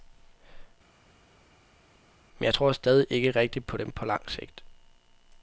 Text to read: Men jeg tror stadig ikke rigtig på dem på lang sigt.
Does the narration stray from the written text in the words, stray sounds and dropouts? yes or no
no